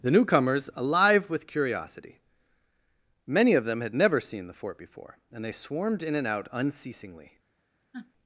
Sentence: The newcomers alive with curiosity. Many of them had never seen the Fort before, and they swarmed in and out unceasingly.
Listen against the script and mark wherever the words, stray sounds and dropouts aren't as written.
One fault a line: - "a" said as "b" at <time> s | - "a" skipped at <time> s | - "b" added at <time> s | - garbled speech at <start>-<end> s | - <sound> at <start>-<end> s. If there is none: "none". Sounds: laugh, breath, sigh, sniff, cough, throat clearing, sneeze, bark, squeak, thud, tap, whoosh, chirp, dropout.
- sniff at 7.9-8.1 s